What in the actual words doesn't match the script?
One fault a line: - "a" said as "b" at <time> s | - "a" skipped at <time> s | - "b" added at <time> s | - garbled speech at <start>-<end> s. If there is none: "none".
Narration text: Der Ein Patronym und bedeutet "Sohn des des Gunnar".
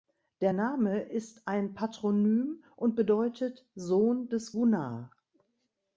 - "Name ist" added at 0.5 s
- "des" skipped at 4.5 s